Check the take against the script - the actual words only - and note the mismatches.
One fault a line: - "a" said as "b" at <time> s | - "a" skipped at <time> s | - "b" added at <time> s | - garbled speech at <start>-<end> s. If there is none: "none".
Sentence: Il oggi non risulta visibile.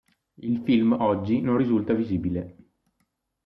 - "film" added at 0.6 s